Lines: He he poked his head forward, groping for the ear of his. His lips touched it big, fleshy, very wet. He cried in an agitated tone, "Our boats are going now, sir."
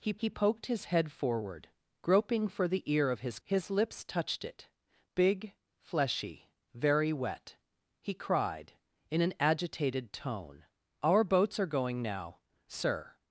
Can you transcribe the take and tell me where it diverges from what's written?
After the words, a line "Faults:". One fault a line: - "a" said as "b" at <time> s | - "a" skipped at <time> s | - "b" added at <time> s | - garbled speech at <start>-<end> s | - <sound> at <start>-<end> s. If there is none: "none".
He he poked his head forward, groping for the ear of his. His lips touched it big, fleshy, very wet. He cried in an agitated tone, "Our boats are going now, sir."
Faults:
none